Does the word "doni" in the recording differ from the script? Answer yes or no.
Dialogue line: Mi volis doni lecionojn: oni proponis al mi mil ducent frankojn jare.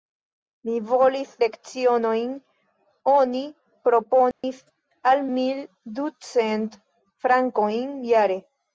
yes